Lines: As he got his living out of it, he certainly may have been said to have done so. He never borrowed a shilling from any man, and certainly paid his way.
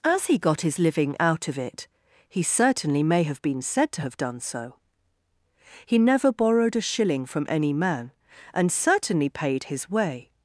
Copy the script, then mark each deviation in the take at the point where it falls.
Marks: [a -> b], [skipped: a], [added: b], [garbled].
As he got his living out of it, he certainly may have been said to have done so. He never borrowed a shilling from any man, and certainly paid his way.